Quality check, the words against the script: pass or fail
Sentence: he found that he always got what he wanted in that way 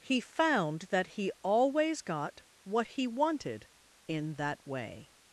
pass